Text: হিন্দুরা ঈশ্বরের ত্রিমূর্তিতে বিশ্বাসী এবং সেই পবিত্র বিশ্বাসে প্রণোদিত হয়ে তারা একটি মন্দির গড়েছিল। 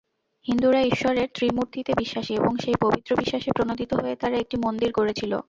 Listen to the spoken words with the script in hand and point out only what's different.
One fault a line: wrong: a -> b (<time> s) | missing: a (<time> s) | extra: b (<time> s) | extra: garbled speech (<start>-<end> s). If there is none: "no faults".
no faults